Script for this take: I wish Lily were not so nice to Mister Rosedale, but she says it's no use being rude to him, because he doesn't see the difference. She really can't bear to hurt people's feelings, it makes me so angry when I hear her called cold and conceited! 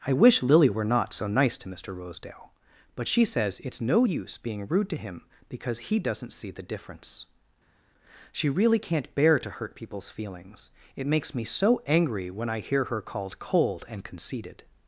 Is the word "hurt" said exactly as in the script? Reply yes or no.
yes